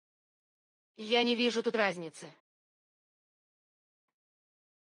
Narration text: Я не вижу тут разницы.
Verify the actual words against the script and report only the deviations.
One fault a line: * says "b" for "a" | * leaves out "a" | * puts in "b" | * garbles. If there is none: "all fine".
all fine